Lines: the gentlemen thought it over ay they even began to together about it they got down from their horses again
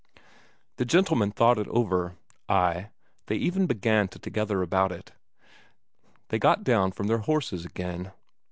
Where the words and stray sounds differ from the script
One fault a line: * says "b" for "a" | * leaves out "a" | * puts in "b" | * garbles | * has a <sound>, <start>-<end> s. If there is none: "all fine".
all fine